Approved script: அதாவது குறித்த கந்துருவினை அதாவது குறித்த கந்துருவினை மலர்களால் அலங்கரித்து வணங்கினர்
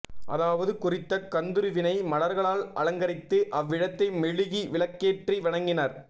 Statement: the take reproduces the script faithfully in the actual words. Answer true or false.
false